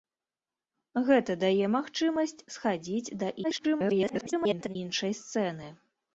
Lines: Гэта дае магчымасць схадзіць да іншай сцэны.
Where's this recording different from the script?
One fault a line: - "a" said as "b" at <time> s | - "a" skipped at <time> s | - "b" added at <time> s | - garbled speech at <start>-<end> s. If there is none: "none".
- garbled speech at 3.4-4.8 s